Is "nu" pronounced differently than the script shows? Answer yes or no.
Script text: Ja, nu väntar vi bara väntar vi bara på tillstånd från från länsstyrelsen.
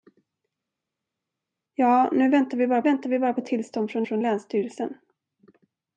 no